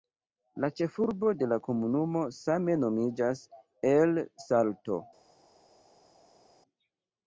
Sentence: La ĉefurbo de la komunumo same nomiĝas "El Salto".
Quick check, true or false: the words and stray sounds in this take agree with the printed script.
true